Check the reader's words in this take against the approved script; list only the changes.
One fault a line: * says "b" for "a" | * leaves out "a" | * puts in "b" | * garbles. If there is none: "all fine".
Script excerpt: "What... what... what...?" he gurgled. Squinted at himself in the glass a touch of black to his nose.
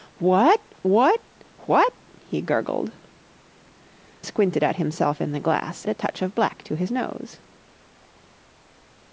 all fine